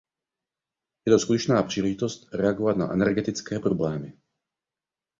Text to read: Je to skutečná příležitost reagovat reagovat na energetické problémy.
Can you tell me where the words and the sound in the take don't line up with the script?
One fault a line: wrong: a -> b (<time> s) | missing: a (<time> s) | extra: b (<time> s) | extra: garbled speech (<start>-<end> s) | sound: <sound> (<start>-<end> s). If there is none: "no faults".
missing: reagovat (2.8 s)